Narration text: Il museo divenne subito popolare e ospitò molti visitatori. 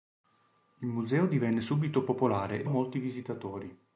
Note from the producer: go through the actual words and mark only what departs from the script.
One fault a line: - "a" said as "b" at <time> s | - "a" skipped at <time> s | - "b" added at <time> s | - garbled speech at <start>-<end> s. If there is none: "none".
- "ospitò" skipped at 2.7 s